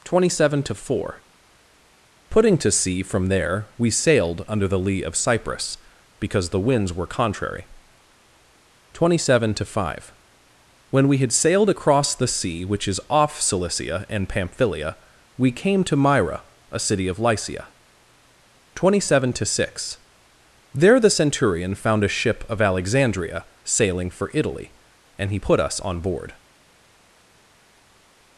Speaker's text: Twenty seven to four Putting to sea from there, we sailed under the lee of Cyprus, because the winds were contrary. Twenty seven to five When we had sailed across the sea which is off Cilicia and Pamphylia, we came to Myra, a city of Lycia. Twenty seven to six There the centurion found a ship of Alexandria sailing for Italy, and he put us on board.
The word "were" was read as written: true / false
true